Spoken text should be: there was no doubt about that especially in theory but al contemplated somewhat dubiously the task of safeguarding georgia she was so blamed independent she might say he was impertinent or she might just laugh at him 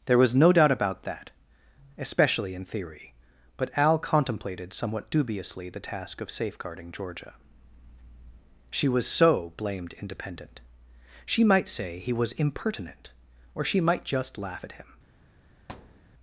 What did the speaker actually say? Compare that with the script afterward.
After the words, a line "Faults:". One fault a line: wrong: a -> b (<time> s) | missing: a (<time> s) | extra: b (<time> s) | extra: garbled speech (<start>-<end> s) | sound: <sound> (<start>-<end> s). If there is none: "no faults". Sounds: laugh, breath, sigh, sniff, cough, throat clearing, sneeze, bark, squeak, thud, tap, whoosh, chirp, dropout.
there was no doubt about that especially in theory but al contemplated somewhat dubiously the task of safeguarding georgia she was so blamed independent she might say he was impertinent or she might just laugh at him
Faults:
sound: thud (15.7-16.1 s)